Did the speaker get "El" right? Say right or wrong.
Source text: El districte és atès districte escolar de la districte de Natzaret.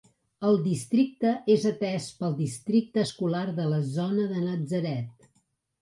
right